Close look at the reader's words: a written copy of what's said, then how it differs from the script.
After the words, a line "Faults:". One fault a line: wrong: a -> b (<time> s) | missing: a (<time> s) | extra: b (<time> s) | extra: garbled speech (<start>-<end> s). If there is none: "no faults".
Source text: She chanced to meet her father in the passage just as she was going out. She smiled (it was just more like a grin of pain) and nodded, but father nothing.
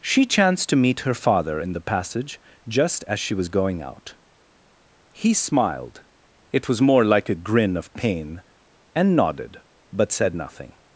She chanced to meet her father in the passage just as she was going out. He smiled (it was more like a grin of pain) and nodded, but said nothing.
Faults:
wrong: She -> He (5.1 s)
missing: just (6.8 s)
wrong: father -> said (10.1 s)